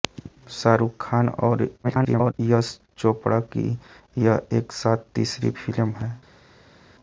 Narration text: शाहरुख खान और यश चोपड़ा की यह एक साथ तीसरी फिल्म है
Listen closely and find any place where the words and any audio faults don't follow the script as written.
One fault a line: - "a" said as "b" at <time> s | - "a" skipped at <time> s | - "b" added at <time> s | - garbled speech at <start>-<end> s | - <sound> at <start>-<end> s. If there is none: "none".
- garbled speech at 1.8-2.3 s